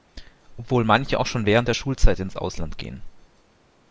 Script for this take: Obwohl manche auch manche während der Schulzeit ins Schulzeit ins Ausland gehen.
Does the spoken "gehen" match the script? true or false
true